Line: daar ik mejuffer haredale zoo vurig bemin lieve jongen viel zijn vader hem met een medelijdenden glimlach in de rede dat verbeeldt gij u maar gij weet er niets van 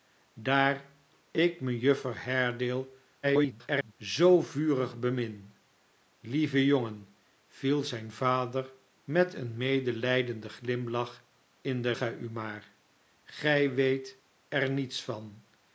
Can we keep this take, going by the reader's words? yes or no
no